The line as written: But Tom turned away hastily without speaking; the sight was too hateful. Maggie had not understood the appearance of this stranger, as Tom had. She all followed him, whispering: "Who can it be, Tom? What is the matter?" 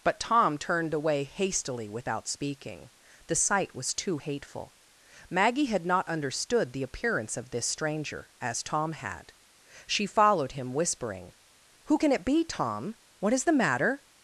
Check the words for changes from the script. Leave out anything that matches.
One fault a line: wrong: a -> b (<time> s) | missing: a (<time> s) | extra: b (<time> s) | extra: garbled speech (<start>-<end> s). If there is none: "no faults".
missing: all (10.0 s)